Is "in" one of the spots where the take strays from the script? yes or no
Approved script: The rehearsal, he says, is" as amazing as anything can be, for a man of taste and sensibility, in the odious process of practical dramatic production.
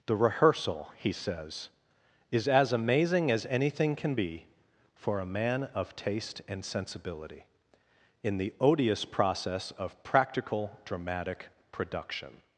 no